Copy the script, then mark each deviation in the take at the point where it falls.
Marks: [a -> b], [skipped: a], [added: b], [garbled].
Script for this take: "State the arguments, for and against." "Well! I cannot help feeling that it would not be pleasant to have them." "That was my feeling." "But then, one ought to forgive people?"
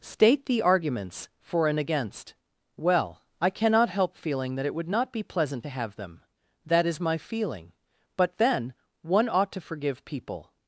"State the arguments, for and against." "Well! I cannot help feeling that it would not be pleasant to have them." "That [was -> is] my feeling." "But then, one ought to forgive people?"